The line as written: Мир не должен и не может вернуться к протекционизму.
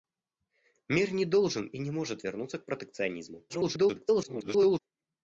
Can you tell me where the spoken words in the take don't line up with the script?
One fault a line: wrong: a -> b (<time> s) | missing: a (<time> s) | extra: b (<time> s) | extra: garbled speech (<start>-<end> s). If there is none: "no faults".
extra: garbled speech (3.5-4.8 s)